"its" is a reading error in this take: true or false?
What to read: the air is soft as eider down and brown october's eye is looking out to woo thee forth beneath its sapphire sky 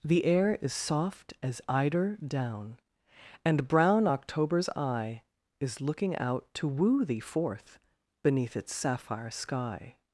false